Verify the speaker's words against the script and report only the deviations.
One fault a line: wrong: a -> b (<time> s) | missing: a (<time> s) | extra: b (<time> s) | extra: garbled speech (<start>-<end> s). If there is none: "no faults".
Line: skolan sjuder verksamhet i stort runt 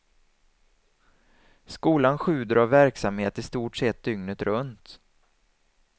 extra: av (2.5 s)
extra: sett dygnet (3.8 s)